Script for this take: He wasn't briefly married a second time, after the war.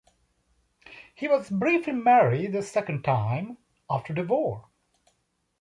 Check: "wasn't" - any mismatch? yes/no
yes